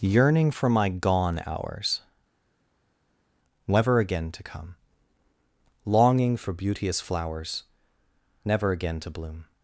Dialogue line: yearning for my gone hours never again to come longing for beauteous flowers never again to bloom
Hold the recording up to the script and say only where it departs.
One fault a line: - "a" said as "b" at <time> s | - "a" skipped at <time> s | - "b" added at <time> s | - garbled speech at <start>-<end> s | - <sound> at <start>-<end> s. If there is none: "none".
none